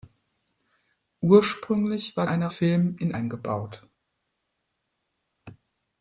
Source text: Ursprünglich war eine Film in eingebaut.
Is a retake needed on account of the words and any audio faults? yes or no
no